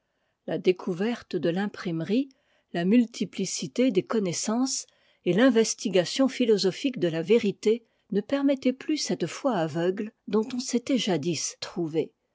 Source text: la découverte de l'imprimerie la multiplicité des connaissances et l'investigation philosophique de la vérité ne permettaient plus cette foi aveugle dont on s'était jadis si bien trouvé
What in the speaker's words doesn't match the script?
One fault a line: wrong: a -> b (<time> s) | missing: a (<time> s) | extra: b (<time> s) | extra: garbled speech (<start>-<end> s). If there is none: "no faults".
missing: si bien (11.6 s)